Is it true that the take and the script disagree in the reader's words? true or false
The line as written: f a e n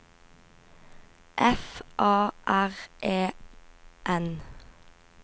true